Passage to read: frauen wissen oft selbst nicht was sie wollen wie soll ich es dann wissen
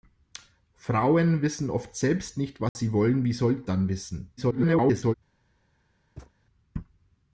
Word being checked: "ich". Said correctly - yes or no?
no